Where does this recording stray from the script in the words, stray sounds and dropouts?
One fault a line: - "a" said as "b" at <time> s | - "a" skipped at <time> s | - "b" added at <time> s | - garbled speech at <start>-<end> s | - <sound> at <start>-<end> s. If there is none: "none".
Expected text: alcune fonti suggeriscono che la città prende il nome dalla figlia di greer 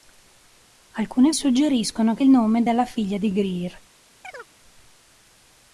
- "fonti" skipped at 1.3 s
- "la città prende" skipped at 2.2 s
- chirp at 4.2-4.5 s